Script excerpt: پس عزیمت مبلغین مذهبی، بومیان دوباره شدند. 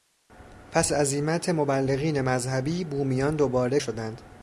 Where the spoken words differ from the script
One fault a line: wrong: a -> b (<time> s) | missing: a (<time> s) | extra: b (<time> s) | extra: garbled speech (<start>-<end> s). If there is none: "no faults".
no faults